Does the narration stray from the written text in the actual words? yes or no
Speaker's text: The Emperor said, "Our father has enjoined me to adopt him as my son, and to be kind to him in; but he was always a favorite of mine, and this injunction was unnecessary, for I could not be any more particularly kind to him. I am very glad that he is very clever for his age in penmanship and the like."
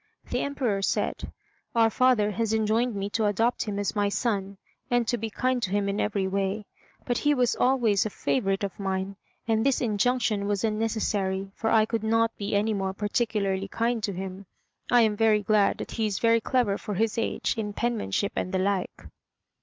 yes